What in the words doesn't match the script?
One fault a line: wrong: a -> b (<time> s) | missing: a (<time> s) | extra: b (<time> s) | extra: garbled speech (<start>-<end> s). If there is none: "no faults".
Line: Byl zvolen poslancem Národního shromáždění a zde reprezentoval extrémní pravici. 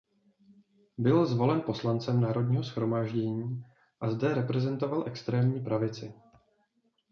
no faults